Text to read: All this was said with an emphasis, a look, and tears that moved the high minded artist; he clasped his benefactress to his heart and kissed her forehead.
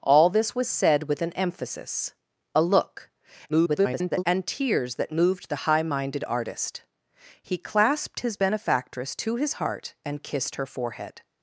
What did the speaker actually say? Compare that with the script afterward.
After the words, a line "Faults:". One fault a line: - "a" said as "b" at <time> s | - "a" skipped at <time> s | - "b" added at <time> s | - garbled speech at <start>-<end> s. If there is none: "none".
All this was said with an emphasis, a look, [garbled] and tears that moved the high minded artist; he clasped his benefactress to his heart and kissed her forehead.
Faults:
- garbled speech at 3.5-4.2 s